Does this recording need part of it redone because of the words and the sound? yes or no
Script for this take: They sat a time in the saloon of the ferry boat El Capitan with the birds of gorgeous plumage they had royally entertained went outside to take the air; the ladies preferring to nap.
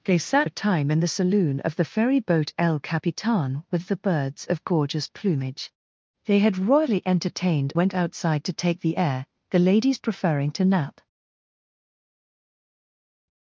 no